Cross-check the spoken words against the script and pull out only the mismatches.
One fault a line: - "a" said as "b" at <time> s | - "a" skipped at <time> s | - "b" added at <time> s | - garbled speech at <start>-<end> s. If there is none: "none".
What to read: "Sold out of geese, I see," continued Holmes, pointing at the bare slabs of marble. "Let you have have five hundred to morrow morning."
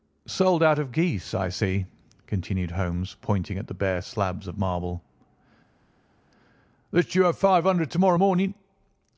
- "have" skipped at 7.4 s